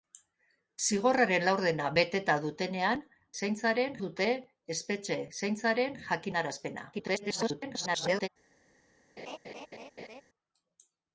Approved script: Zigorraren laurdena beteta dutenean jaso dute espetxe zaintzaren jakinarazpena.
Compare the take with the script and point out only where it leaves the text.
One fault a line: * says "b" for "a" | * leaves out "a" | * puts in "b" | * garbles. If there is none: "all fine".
* says "zaintzaren" for "jaso"
* garbles